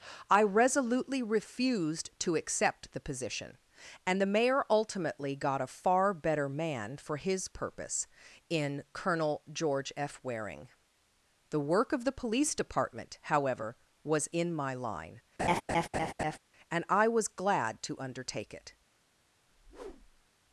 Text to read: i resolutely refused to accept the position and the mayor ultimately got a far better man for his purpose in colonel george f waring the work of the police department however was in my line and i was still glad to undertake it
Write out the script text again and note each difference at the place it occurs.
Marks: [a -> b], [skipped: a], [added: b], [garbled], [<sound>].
i resolutely refused to accept the position and the mayor ultimately got a far better man for his purpose in colonel george f waring the work of the police department however was in my line [laugh] and i was [skipped: still] glad to undertake it [whoosh]